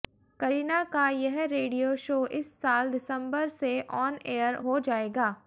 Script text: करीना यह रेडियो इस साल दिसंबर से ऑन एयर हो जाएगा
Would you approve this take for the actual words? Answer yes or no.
no